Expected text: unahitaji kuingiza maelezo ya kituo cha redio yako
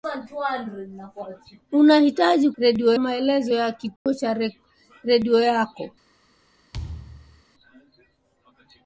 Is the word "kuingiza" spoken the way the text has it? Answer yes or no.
no